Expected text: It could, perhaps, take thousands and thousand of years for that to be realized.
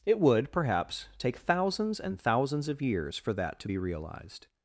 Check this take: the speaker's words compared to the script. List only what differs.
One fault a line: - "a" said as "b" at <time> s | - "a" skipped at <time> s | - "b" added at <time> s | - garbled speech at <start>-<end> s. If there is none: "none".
- "could" said as "would" at 0.2 s
- "thousand" said as "thousands" at 2.2 s